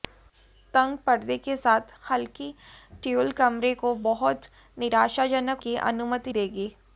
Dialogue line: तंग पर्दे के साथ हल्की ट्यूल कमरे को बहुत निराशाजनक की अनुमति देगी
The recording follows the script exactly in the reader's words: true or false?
true